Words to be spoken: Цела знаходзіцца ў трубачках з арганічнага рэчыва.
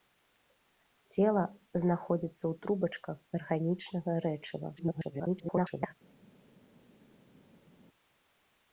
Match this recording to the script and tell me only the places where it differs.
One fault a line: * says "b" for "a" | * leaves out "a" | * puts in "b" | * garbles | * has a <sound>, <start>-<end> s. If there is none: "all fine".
* garbles